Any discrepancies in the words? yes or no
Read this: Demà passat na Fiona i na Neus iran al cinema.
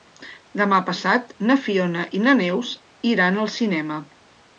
no